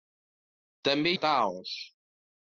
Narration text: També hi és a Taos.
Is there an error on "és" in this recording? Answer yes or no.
yes